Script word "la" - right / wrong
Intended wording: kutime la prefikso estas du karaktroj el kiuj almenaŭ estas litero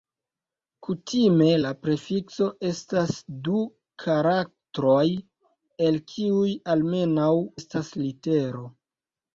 right